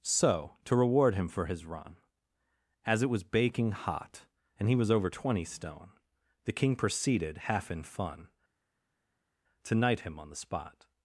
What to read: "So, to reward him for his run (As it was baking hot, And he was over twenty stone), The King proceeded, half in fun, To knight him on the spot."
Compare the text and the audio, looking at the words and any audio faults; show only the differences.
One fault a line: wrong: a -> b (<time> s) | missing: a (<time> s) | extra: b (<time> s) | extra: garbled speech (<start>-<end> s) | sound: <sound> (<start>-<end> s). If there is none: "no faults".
no faults